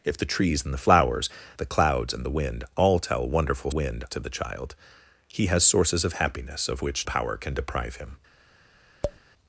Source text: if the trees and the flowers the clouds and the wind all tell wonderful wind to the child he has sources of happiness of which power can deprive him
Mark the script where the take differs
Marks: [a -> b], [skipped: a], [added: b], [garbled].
if the trees and the flowers the clouds and the wind all tell wonderful wind to the child he has sources of happiness of which power can deprive him